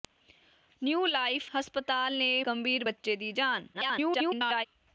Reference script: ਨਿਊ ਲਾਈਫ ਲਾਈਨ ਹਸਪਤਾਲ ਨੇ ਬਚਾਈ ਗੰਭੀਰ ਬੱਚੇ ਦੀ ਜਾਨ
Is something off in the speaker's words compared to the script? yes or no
yes